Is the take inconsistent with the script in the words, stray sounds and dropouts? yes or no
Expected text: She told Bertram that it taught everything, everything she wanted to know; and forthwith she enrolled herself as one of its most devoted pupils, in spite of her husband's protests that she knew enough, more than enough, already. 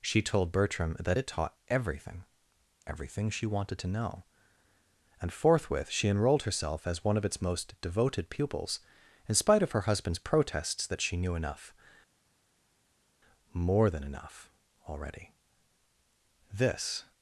yes